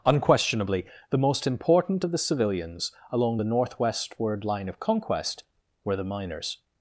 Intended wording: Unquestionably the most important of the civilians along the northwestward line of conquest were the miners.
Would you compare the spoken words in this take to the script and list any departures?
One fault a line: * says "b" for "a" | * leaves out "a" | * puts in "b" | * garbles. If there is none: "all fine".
all fine